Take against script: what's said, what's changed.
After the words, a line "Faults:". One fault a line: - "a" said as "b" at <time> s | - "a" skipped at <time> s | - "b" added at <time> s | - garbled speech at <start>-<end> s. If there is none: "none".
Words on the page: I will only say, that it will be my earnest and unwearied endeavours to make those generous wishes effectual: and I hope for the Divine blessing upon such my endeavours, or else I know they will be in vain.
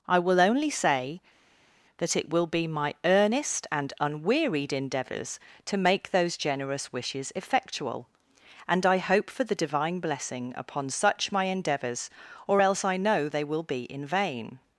I will only say, that it will be my earnest and unwearied endeavours to make those generous wishes effectual: and I hope for the Divine blessing upon such my endeavours, or else I know they will be in vain.
Faults:
none